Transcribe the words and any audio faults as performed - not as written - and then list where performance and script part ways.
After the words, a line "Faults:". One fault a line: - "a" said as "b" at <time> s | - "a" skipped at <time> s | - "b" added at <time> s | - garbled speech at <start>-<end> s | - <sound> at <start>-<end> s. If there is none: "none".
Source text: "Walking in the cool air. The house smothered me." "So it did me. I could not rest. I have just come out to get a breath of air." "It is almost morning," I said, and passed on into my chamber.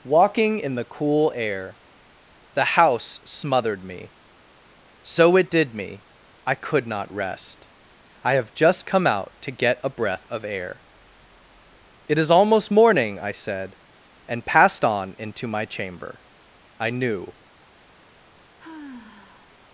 "Walking in the cool air. The house smothered me." "So it did me. I could not rest. I have just come out to get a breath of air." "It is almost morning," I said, and passed on into my chamber. I knew
Faults:
- "I knew" added at 16.8 s
- sigh at 18.6-19.6 s